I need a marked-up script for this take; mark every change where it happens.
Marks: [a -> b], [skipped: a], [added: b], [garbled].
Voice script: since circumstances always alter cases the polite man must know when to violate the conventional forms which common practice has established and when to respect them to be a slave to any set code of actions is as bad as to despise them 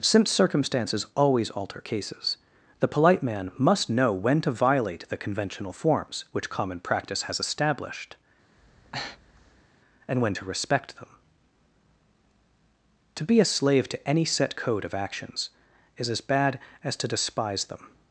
since circumstances always alter cases the polite man must know when to violate the conventional forms which common practice has established and when to respect them to be a slave to any set code of actions is as bad as to despise them